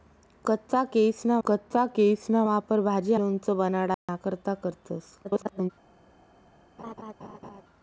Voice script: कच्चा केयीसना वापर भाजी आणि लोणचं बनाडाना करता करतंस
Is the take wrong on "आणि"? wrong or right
wrong